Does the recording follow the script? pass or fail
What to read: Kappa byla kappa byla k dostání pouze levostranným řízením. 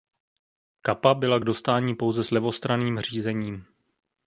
fail